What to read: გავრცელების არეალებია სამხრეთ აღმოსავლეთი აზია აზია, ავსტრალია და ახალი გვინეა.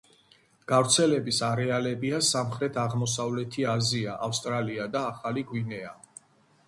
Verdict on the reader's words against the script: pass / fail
fail